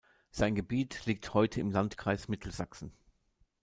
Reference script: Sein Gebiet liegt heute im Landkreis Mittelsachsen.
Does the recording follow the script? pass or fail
pass